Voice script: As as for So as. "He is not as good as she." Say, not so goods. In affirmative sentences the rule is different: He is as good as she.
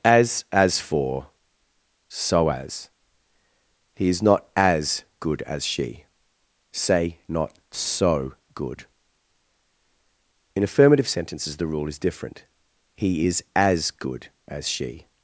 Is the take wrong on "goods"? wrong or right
wrong